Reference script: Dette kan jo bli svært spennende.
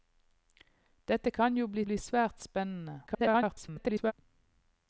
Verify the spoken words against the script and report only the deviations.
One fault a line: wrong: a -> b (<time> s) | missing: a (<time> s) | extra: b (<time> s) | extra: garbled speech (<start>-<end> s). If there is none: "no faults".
extra: bli (1.8 s)
extra: garbled speech (3.1-4.1 s)